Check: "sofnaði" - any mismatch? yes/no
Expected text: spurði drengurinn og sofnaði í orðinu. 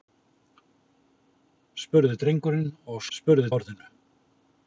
yes